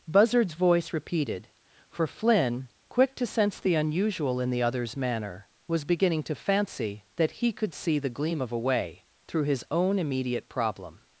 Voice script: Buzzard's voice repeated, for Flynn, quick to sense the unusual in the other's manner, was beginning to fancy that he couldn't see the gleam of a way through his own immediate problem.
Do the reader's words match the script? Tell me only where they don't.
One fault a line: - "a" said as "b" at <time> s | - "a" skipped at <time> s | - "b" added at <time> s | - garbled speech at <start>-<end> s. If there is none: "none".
- "couldn't" said as "could" at 7.5 s